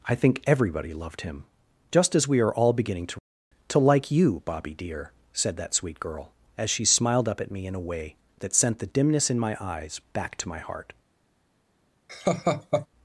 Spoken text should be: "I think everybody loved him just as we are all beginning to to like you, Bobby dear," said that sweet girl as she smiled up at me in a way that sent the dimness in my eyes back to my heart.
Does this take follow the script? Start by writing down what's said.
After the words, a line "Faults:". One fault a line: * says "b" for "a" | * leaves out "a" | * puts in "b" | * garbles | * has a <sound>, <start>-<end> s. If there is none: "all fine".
"I think everybody loved him just as we are all beginning to to like you, Bobby dear," said that sweet girl as she smiled up at me in a way that sent the dimness in my eyes back to my heart.
Faults:
* has a laugh, 12.1-12.9 s